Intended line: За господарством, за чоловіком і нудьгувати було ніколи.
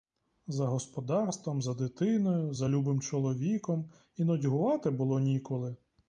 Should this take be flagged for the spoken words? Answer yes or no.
yes